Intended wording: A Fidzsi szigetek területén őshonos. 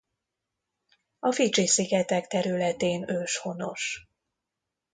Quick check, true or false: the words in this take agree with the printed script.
true